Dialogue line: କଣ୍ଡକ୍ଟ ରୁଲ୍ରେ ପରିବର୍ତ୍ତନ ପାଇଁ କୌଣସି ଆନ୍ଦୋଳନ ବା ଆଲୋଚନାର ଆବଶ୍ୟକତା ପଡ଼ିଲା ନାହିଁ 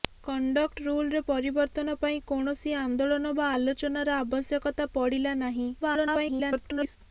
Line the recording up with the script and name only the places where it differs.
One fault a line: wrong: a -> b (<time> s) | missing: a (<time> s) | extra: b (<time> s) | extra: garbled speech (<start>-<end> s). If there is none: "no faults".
extra: garbled speech (5.8-7.0 s)